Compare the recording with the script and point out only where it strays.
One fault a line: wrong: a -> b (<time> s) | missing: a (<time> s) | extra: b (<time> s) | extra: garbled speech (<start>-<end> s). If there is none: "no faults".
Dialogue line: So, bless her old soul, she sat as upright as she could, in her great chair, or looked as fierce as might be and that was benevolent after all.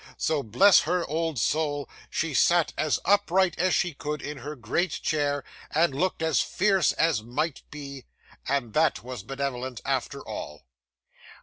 wrong: or -> and (5.7 s)